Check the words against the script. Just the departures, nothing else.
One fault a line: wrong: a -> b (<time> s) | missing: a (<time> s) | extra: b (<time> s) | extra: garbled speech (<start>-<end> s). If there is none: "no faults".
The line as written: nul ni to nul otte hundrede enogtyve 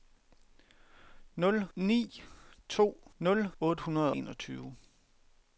no faults